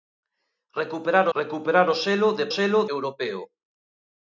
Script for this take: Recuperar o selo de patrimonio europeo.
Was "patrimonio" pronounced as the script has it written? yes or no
no